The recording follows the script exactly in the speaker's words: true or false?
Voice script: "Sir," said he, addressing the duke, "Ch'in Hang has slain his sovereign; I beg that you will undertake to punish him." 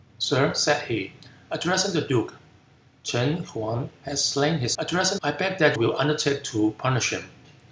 false